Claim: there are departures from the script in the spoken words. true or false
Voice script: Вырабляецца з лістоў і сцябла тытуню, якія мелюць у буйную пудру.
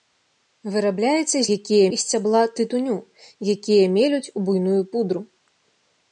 true